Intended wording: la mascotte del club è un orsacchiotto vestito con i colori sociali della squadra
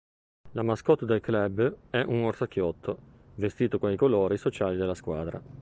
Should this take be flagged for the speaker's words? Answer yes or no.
no